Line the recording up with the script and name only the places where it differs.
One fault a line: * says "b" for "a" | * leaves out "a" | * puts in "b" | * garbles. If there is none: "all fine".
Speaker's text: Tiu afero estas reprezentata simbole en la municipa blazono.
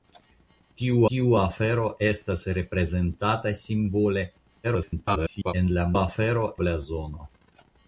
* puts in "tiu"
* garbles
* says "afero" for "municipa"